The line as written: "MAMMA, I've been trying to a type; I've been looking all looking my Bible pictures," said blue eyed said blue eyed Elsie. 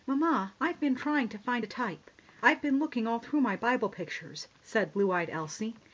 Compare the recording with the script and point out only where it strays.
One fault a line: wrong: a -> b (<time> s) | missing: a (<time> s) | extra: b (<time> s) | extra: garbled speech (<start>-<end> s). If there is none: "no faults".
extra: find (1.4 s)
wrong: looking -> through (3.2 s)
missing: said blue eyed (5.3 s)